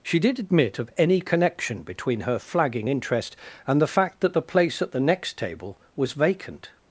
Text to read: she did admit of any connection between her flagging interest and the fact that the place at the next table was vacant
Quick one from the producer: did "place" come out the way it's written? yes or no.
yes